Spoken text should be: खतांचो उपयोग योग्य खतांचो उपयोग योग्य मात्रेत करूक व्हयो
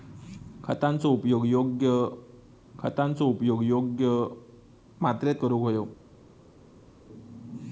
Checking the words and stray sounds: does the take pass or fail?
pass